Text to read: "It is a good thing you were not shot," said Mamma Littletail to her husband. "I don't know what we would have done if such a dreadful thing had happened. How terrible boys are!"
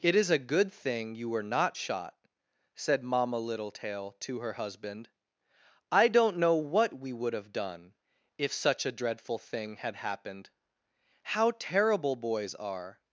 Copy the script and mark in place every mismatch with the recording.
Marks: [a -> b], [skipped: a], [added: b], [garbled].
"It is a good thing you were not shot," said Mamma Littletail to her husband. "I don't know what we would have done if such a dreadful thing had happened. How terrible boys are!"